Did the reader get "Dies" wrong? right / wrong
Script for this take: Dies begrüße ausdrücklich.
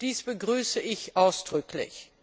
right